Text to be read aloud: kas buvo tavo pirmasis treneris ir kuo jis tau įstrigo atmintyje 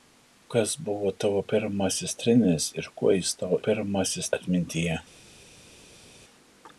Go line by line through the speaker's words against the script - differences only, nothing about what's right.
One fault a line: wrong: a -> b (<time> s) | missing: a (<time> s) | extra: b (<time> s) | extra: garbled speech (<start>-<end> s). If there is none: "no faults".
wrong: įstrigo -> pirmasis (3.7 s)